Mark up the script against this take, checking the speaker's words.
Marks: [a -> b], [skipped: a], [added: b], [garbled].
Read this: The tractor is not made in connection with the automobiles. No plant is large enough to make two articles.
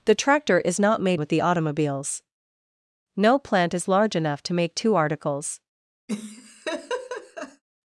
The tractor is not made [skipped: in connection] with the automobiles. No plant is large enough to make two articles.